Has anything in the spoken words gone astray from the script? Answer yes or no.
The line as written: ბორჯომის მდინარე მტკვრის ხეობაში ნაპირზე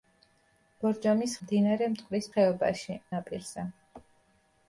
no